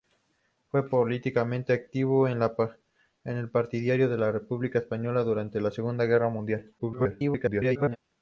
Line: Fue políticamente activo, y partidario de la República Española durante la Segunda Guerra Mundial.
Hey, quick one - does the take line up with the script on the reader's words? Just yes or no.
no